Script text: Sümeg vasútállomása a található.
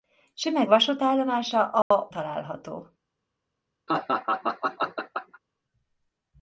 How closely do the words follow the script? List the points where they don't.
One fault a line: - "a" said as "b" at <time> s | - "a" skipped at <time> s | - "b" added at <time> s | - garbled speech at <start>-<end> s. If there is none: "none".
none